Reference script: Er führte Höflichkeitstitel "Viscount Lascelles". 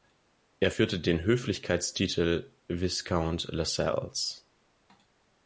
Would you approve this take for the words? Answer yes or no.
no